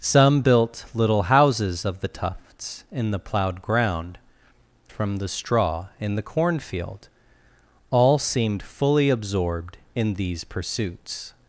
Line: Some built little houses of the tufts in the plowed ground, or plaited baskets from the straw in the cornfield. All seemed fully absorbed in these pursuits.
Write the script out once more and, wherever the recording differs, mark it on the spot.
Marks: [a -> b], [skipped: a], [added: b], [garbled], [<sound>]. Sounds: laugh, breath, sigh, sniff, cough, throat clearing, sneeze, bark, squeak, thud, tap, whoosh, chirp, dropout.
Some built little houses of the tufts in the plowed ground, [skipped: or plaited baskets] from the straw in the cornfield. All seemed fully absorbed in these pursuits.